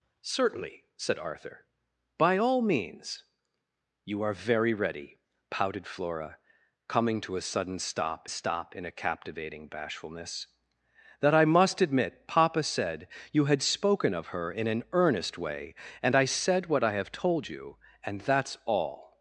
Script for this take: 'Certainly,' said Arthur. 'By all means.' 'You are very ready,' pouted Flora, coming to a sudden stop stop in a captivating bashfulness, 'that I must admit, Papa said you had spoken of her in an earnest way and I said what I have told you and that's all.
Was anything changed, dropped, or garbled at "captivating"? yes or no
no